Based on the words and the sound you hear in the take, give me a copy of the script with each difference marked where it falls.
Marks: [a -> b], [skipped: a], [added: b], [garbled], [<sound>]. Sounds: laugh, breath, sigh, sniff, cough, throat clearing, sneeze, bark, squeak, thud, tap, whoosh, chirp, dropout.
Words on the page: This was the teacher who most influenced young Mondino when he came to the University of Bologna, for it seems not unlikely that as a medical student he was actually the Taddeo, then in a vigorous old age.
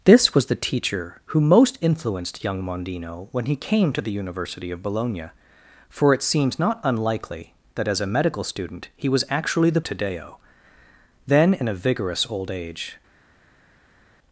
This was the teacher who most influenced young Mondino when he came to the University of Bologna, for it seems not unlikely that as a medical student he was actually the Taddeo, then in a vigorous old age.